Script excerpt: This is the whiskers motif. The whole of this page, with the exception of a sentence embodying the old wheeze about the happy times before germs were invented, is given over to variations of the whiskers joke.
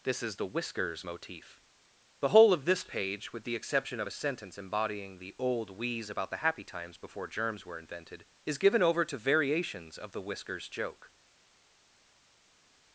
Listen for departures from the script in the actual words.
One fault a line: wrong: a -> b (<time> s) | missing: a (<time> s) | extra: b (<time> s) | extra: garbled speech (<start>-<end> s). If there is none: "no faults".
no faults